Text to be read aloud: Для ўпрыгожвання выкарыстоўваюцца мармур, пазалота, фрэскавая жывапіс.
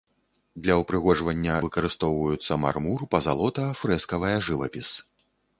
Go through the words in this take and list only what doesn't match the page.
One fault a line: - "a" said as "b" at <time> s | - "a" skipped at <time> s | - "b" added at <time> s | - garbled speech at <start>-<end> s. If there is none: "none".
none